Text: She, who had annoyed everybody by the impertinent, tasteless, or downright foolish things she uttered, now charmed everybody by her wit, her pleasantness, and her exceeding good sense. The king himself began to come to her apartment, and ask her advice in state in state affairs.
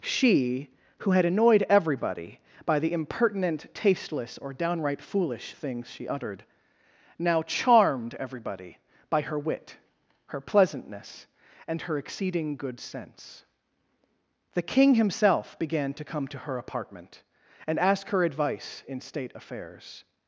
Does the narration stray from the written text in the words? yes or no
yes